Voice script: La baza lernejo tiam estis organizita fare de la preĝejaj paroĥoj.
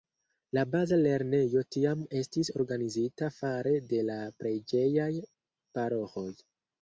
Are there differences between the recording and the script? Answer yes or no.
no